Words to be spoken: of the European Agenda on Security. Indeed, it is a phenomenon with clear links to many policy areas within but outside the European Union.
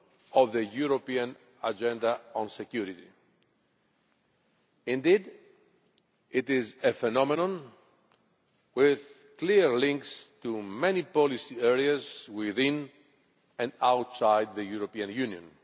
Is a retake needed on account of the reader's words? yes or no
yes